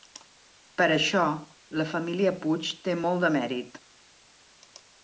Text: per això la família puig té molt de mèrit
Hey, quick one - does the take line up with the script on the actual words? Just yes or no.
yes